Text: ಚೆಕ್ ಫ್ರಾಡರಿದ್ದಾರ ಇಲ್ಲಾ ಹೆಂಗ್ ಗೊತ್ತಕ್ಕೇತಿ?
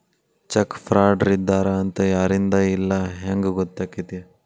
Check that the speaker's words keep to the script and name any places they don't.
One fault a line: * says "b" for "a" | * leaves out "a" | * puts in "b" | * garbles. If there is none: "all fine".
* puts in "ಅಂತ ಯಾರಿಂದಾ"